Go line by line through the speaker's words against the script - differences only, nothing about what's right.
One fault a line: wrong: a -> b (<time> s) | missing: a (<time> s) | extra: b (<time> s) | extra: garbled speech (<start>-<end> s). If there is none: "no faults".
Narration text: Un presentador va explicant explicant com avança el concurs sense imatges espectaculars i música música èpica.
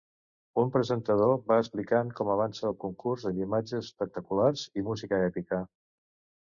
missing: explicant (2.1 s)
wrong: sense -> amb (3.3 s)
missing: música (5.2 s)